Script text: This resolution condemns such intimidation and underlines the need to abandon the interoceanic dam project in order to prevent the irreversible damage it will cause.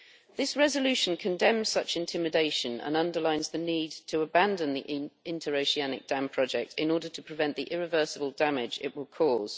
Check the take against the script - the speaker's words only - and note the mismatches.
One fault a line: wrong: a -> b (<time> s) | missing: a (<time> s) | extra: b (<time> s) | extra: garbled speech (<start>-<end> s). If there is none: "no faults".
no faults